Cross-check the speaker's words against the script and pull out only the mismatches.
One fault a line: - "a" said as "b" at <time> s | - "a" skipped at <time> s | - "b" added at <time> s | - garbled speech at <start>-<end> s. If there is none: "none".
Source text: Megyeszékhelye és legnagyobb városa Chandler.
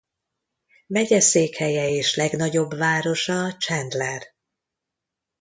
none